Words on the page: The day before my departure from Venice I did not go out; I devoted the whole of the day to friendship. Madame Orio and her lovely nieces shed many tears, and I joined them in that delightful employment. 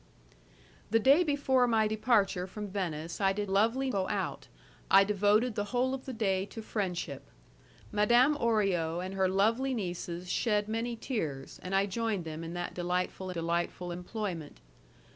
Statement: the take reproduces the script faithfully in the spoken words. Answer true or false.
false